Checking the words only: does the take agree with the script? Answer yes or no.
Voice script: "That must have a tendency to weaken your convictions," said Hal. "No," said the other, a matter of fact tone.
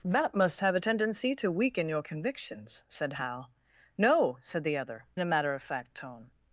yes